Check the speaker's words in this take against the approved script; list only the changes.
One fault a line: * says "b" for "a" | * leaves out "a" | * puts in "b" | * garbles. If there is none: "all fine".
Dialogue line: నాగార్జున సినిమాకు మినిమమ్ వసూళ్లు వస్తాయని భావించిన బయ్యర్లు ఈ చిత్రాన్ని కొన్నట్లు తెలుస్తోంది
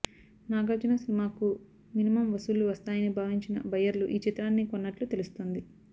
all fine